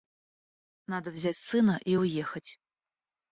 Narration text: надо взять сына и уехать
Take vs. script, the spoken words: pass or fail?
pass